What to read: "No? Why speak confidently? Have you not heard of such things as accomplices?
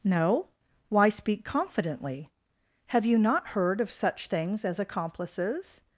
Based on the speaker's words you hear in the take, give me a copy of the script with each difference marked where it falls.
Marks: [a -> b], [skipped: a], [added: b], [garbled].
"No? Why speak confidently? Have you not heard of such things as accomplices?